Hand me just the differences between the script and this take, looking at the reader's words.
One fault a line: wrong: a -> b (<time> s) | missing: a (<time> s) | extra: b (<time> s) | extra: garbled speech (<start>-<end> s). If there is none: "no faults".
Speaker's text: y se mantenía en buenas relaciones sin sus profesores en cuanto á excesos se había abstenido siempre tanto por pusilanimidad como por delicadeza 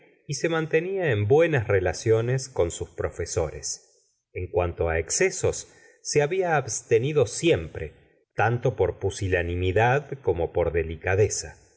wrong: sin -> con (2.5 s)